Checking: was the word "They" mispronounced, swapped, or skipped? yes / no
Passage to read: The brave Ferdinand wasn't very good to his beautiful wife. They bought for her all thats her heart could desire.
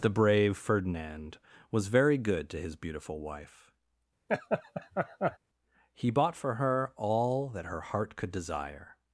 yes